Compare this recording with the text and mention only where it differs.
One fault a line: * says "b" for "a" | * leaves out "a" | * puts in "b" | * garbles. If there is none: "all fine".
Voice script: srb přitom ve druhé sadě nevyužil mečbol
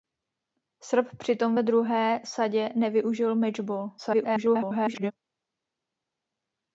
* garbles